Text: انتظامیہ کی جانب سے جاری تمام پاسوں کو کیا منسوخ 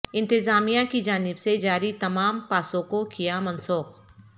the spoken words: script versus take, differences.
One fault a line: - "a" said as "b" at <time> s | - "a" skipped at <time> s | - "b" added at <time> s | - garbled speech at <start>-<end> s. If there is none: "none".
none